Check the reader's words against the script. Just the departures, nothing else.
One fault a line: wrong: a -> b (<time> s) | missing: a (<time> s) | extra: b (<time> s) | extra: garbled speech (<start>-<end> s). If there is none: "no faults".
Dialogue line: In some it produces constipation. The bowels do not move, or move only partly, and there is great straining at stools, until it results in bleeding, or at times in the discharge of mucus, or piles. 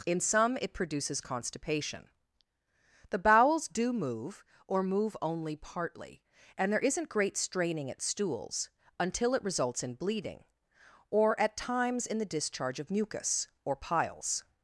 missing: not (3.9 s)
wrong: is -> isn't (6.8 s)